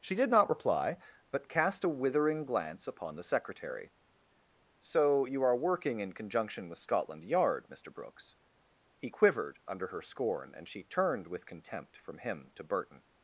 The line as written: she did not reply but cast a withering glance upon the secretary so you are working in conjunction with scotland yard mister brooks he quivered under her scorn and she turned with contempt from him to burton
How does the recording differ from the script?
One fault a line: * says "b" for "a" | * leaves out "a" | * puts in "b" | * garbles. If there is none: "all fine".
all fine